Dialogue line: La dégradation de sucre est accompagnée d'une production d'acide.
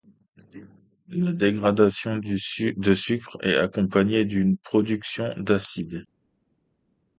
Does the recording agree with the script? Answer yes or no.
yes